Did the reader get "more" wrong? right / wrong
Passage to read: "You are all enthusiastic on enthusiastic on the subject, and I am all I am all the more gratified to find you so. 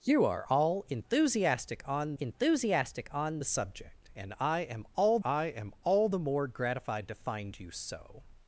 right